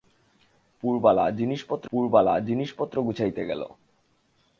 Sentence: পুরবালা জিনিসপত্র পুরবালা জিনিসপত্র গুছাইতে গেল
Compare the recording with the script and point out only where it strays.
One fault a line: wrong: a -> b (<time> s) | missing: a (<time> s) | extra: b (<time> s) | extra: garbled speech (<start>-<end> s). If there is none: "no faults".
no faults